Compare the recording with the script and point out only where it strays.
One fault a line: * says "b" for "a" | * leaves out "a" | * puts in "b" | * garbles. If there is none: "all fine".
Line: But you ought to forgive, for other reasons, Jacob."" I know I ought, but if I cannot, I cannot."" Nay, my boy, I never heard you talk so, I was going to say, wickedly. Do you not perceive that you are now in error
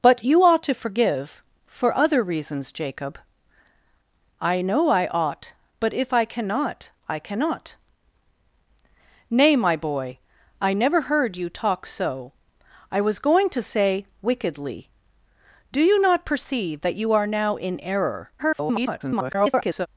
* garbles